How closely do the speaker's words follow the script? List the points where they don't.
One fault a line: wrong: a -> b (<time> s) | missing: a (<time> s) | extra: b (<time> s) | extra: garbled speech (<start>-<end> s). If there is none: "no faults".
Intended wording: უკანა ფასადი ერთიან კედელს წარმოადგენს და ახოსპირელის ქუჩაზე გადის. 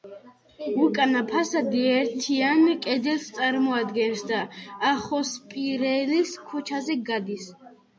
no faults